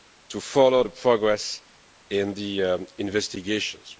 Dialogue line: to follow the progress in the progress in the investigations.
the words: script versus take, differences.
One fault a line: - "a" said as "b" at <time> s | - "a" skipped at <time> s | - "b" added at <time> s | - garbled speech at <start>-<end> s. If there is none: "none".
- "progress in the" skipped at 2.9 s